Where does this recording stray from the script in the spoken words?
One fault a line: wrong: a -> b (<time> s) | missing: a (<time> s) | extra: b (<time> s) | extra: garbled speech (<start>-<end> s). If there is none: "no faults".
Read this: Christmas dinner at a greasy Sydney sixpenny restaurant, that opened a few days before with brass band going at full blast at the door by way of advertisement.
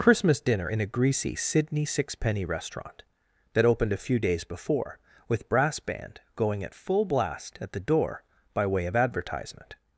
wrong: at -> in (0.6 s)